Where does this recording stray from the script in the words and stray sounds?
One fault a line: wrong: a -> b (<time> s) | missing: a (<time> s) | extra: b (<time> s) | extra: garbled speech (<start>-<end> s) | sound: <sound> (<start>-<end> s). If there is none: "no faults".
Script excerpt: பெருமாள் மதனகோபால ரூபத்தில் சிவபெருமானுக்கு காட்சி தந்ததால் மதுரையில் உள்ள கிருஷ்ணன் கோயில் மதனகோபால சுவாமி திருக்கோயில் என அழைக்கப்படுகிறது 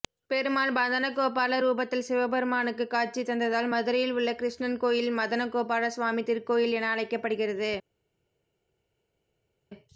no faults